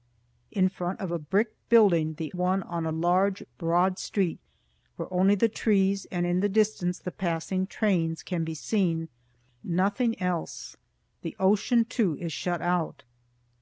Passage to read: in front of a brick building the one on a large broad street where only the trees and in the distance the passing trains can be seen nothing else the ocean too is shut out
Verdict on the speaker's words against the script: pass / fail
pass